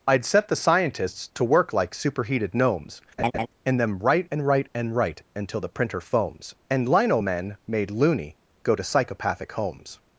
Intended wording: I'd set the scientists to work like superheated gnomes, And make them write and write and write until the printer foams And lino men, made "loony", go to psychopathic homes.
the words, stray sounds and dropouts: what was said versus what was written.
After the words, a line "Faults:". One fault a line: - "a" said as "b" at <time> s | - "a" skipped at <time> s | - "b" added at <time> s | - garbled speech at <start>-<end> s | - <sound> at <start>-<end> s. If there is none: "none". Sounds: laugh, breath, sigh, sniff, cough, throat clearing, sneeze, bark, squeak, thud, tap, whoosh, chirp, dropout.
I'd set the scientists to work like superheated gnomes, And them write and write and write until the printer foams And lino men, made "loony", go to psychopathic homes.
Faults:
- laugh at 3.2-3.5 s
- "make" skipped at 3.8 s